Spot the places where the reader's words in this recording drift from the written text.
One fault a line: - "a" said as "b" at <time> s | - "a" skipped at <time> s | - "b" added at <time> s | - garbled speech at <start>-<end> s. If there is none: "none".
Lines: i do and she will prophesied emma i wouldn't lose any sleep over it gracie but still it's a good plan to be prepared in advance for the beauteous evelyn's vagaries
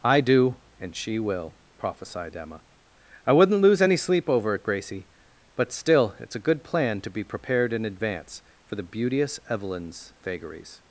none